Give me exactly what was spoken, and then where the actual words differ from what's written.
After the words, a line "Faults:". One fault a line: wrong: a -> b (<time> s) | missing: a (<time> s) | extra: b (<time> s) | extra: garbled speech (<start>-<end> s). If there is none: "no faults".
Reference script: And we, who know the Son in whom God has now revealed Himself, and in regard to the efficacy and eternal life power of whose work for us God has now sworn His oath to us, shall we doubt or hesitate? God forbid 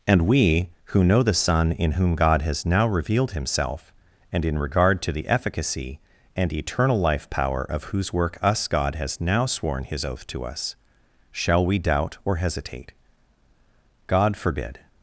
And we, who know the Son in whom God has now revealed Himself, and in regard to the efficacy and eternal life power of whose work us God has now sworn His oath to us, shall we doubt or hesitate? God forbid
Faults:
missing: for (8.4 s)